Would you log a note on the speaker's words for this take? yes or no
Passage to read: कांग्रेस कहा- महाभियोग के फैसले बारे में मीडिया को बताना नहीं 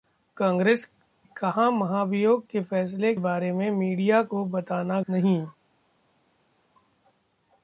no